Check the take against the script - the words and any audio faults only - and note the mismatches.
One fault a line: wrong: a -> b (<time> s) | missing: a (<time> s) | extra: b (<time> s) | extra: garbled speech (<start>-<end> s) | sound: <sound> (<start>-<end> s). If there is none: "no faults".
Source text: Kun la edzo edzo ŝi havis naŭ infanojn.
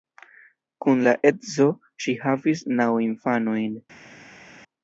missing: edzo (1.7 s)